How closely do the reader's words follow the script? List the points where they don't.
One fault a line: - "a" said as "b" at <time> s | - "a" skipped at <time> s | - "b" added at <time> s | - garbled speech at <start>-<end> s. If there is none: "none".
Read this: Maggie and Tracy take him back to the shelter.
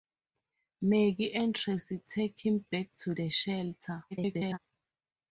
- garbled speech at 4.1-4.6 s